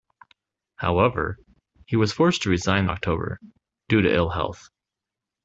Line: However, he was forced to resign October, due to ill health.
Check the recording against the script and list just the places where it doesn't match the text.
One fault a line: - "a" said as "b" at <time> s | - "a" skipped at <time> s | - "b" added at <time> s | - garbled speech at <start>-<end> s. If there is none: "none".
none